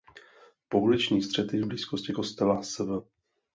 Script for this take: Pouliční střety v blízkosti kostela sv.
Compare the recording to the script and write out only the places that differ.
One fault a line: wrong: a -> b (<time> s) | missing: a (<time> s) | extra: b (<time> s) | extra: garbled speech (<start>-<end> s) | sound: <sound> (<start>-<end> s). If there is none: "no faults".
no faults